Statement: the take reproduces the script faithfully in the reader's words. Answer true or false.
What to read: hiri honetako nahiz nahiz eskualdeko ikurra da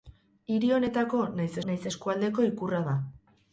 true